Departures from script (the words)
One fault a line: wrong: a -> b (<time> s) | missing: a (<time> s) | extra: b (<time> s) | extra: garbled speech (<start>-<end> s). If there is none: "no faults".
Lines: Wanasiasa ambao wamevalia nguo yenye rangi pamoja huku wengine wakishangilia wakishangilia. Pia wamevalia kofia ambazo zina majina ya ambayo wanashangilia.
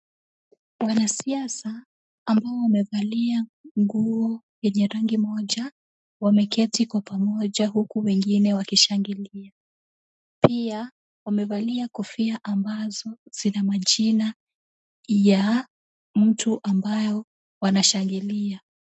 extra: moja wameketi kwa (5.2 s)
missing: wakishangilia (9.5 s)
extra: mtu (16.2 s)